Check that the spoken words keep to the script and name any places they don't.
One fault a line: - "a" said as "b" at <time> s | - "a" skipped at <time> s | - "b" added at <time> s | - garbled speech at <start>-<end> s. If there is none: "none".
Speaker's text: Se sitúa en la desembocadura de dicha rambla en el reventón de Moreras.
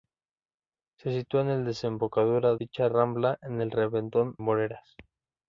- "de" skipped at 2.5 s
- "de" skipped at 4.4 s